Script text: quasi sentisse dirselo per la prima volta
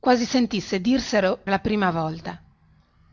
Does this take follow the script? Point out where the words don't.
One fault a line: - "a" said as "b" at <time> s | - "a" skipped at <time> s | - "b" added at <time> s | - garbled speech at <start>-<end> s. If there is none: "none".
- "per" skipped at 1.4 s